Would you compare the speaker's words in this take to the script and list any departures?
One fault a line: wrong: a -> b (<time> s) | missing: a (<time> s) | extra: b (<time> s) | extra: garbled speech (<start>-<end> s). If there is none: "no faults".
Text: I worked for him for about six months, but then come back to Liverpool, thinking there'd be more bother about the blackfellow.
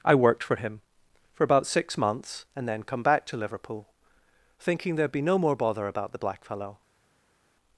wrong: but -> and (2.6 s)
extra: no (5.2 s)